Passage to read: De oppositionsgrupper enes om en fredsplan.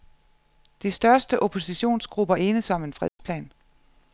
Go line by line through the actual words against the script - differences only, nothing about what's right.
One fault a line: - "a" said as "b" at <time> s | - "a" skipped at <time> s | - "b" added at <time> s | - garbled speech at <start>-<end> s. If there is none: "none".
- "største" added at 0.9 s